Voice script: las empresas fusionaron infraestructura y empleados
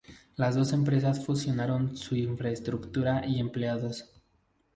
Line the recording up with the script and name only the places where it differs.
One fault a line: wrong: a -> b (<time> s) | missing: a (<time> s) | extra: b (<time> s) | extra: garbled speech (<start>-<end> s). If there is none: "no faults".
extra: dos (0.6 s)
extra: su (1.9 s)